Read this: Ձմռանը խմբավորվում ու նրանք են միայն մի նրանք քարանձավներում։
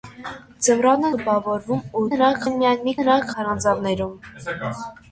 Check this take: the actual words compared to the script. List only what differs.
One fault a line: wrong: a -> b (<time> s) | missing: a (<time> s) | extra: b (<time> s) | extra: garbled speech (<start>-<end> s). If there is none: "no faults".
no faults